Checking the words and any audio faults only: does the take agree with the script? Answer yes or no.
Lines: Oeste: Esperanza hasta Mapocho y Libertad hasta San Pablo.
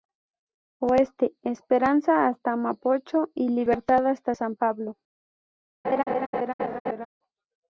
no